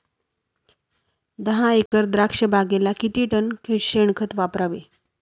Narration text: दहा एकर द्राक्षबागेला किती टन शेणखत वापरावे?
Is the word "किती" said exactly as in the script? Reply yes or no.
yes